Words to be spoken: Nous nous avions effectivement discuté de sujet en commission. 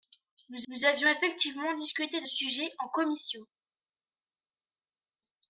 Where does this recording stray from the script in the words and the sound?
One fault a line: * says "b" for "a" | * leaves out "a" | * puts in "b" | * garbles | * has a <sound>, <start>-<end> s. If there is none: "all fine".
all fine